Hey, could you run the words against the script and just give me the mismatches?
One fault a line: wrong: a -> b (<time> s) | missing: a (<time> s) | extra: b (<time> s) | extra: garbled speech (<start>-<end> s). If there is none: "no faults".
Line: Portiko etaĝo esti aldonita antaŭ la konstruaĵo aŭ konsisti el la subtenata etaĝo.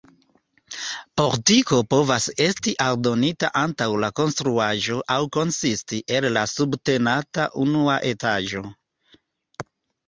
wrong: etaĝo -> povas (1.9 s)
extra: unua (7.7 s)